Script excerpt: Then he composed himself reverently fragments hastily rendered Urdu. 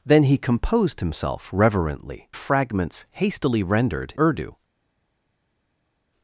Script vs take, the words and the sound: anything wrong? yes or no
no